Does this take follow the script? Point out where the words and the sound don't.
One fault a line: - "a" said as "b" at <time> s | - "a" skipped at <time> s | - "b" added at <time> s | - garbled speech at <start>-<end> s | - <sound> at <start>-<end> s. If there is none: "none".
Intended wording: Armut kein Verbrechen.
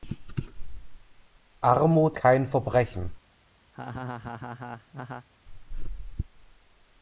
- laugh at 3.7-5.3 s